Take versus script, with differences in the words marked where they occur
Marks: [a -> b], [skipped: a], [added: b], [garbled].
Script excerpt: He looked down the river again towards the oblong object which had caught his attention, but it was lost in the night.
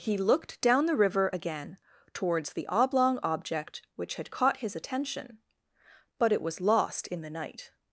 He looked down the river again towards the oblong object which had caught his attention, but it was lost in the night.